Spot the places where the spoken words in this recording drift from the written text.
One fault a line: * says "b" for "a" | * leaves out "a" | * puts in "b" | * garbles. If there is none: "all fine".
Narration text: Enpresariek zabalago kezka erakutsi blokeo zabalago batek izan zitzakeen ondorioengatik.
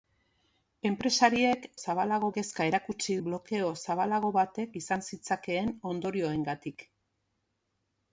all fine